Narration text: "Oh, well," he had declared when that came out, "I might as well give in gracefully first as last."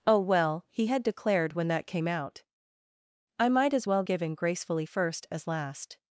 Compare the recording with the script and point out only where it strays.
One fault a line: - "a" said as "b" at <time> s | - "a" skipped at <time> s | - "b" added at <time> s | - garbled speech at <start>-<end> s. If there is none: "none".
none